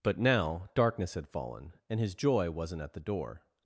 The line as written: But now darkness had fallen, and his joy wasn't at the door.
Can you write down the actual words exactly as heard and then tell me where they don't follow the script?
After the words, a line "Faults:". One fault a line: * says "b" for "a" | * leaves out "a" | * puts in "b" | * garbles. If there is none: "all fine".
But now darkness had fallen, and his joy wasn't at the door.
Faults:
all fine